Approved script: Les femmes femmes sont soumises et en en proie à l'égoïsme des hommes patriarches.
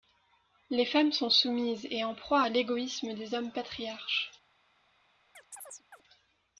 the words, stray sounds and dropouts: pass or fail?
fail